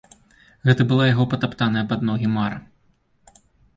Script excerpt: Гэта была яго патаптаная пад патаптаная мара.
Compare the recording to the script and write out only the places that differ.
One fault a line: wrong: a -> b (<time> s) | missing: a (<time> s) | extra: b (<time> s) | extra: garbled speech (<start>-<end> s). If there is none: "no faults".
wrong: патаптаная -> ногі (2.1 s)